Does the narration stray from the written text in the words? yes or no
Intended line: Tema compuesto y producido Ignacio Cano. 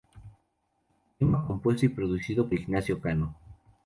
no